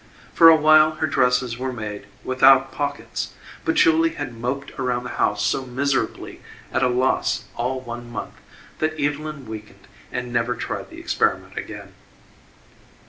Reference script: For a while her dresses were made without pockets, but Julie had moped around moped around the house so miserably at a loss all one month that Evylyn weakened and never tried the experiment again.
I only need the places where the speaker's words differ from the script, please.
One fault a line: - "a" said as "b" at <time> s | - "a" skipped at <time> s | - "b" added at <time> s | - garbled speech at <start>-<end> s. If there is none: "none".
- "moped around" skipped at 5.0 s